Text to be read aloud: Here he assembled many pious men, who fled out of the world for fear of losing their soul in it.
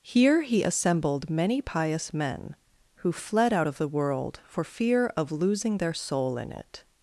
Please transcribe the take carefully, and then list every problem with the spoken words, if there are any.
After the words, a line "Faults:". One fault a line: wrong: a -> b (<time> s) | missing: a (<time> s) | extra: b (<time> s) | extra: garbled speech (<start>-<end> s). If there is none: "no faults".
Here he assembled many pious men, who fled out of the world for fear of losing their soul in it.
Faults:
no faults